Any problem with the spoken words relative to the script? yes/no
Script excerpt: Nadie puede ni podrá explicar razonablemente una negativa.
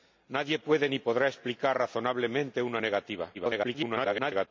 yes